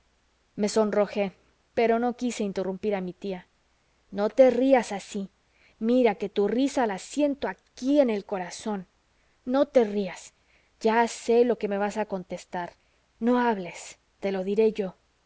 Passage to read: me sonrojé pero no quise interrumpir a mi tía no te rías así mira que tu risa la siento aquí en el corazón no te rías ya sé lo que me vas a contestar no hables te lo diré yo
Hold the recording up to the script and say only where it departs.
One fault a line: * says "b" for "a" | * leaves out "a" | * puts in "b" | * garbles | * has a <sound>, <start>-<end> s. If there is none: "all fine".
all fine